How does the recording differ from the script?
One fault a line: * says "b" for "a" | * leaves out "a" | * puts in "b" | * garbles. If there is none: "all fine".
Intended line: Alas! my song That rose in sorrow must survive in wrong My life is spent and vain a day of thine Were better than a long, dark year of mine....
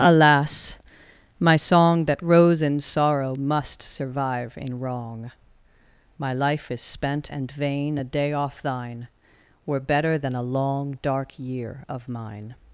* says "off" for "of"